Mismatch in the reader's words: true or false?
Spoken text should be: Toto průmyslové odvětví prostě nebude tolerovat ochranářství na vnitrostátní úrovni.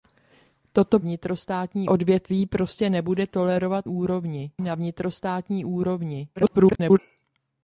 true